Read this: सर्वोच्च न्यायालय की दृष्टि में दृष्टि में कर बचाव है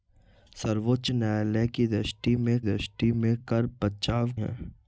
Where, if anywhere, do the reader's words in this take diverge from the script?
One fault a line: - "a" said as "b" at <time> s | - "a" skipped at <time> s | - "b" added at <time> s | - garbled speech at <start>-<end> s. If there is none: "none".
none